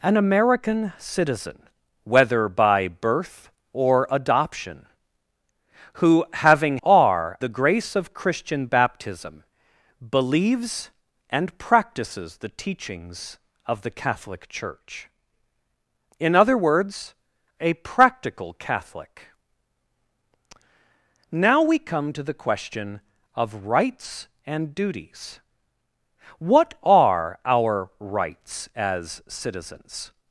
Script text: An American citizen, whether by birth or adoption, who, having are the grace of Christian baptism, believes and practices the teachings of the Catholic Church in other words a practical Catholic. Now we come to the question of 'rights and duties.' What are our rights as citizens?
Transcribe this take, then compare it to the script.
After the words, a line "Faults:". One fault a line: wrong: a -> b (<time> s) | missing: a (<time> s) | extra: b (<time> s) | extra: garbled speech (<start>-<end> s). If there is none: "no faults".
An American citizen, whether by birth or adoption, who, having are the grace of Christian baptism, believes and practices the teachings of the Catholic Church in other words a practical Catholic. Now we come to the question of 'rights and duties.' What are our rights as citizens?
Faults:
no faults